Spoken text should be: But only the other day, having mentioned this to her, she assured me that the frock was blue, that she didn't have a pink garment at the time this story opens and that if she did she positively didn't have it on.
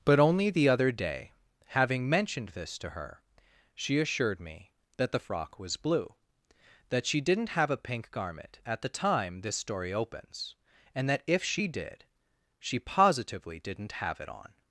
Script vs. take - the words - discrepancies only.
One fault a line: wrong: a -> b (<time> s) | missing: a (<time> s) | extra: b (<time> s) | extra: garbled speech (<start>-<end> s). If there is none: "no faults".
no faults